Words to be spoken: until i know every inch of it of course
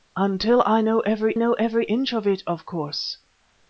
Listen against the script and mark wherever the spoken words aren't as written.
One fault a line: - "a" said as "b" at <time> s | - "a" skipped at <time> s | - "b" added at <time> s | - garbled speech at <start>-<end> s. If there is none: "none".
- "know every" added at 1.4 s